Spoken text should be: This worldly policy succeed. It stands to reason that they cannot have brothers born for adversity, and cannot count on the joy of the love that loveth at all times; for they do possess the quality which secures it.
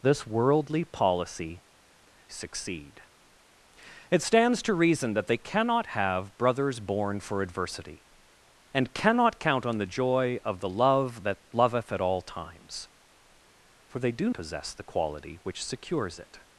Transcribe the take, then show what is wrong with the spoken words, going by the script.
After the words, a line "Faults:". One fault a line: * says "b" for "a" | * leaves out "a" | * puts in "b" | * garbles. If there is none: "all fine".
This worldly policy succeed. It stands to reason that they cannot have brothers born for adversity, and cannot count on the joy of the love that loveth at all times; for they do possess the quality which secures it.
Faults:
all fine